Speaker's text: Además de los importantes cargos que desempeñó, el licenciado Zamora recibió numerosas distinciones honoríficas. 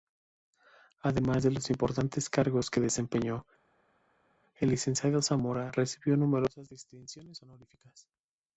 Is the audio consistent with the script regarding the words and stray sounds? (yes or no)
yes